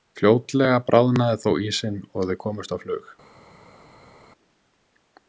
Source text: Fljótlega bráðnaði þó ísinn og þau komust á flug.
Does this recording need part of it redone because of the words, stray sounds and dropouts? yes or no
no